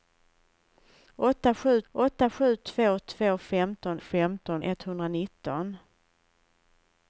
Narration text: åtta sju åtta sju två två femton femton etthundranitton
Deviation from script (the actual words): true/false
false